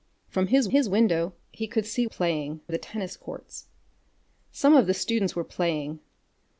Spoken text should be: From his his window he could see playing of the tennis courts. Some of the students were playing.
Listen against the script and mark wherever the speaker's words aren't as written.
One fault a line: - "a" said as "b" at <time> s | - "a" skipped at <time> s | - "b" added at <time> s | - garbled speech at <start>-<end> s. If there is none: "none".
none